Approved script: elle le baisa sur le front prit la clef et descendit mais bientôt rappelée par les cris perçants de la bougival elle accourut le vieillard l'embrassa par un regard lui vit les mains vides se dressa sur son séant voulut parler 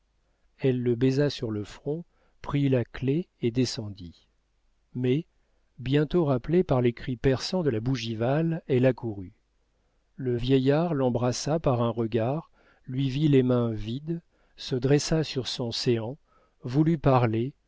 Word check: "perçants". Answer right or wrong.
right